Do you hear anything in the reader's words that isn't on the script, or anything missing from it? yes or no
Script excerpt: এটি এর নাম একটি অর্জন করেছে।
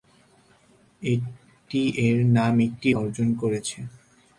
no